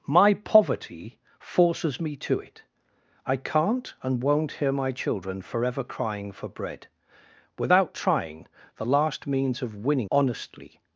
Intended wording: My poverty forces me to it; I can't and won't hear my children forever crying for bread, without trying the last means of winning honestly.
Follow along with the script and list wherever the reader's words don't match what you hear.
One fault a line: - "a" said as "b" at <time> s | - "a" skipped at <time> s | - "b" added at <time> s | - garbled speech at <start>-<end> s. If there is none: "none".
none